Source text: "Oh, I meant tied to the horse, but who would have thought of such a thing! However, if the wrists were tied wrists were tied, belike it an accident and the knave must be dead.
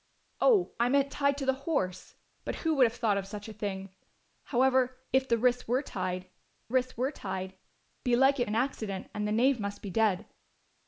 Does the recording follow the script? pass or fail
pass